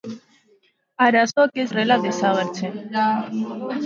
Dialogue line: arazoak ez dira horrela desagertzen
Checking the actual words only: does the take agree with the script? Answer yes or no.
no